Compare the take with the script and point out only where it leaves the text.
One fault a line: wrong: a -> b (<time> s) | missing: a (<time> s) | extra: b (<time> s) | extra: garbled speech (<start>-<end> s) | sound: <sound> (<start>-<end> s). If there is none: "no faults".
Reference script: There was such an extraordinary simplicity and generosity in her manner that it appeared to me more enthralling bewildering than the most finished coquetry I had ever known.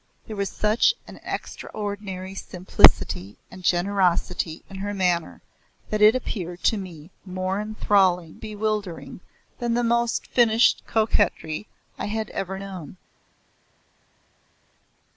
no faults